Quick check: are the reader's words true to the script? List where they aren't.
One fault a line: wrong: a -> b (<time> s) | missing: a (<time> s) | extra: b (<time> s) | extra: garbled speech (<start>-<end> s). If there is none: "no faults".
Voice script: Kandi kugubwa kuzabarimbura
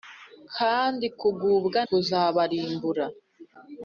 no faults